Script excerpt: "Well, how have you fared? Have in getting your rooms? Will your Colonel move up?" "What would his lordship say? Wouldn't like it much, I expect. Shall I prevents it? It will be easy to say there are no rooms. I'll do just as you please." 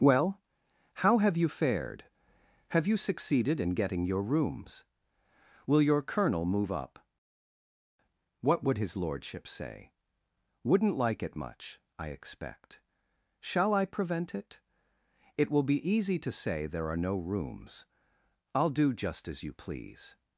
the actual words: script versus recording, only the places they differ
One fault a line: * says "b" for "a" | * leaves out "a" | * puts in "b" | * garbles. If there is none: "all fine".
* puts in "you succeeded"
* says "prevent" for "prevents"